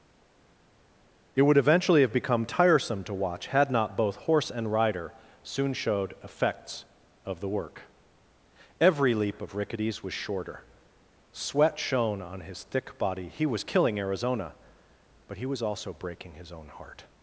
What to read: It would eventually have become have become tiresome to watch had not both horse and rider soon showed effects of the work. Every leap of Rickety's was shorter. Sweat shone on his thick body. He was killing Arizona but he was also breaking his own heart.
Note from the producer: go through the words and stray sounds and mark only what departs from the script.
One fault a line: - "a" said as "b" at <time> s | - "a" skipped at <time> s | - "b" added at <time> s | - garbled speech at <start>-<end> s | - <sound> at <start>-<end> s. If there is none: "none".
- "have become" skipped at 2.5 s